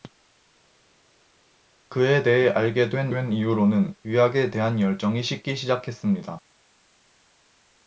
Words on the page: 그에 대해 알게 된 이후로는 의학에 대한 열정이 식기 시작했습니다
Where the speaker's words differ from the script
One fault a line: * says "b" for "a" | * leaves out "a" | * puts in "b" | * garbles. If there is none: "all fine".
* puts in "된"